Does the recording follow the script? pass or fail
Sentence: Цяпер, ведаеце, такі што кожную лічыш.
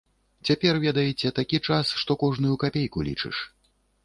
fail